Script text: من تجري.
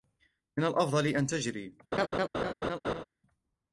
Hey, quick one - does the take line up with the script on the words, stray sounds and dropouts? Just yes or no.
no